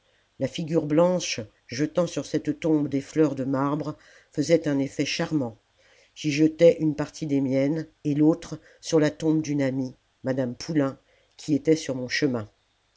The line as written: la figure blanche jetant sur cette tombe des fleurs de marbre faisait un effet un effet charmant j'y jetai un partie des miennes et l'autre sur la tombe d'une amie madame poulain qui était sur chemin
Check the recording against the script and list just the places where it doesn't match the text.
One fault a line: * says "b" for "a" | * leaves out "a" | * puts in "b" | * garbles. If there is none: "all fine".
* leaves out "un effet"
* says "une" for "un"
* puts in "mon"